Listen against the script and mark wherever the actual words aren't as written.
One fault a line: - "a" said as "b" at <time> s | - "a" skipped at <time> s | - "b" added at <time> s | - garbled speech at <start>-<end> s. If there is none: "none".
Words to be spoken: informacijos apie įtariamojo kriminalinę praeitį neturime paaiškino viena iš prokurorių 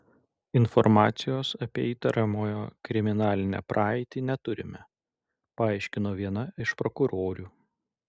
none